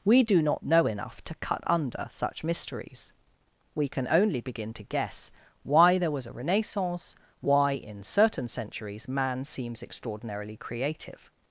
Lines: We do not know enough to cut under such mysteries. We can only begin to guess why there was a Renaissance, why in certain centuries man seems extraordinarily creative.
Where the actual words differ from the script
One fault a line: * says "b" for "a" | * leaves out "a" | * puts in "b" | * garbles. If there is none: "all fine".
all fine